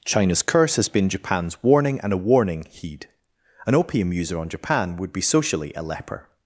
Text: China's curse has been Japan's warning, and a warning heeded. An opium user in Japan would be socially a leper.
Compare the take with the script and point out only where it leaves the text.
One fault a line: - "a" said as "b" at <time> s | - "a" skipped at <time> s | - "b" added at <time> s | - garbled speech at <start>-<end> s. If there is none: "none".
- "heeded" said as "heed" at 2.7 s
- "in" said as "on" at 4.4 s